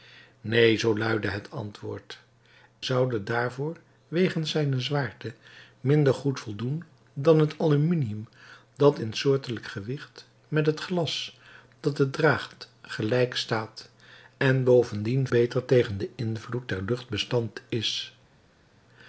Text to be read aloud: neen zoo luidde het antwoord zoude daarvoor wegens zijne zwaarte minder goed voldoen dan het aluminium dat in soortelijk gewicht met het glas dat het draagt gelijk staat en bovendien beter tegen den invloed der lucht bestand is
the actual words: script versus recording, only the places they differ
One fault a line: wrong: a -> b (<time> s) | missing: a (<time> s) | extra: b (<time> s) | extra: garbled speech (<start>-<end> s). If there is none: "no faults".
no faults